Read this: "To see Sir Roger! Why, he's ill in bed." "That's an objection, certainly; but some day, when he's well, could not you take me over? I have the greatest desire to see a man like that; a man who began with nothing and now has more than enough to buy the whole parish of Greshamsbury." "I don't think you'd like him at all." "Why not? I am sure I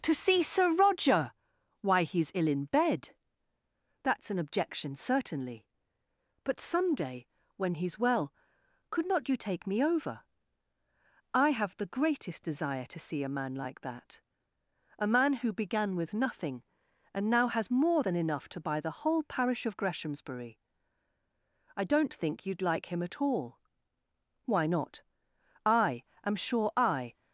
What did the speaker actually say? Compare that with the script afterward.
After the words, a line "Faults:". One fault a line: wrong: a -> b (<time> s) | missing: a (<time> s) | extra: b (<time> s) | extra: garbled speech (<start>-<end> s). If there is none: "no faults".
"To see Sir Roger! Why, he's ill in bed." "That's an objection, certainly; but some day, when he's well, could not you take me over? I have the greatest desire to see a man like that; a man who began with nothing and now has more than enough to buy the whole parish of Greshamsbury." "I don't think you'd like him at all." "Why not? I am sure I
Faults:
no faults